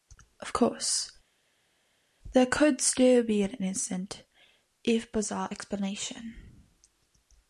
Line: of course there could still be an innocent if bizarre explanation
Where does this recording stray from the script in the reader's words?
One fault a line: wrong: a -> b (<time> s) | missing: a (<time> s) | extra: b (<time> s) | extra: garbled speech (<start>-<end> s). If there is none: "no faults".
no faults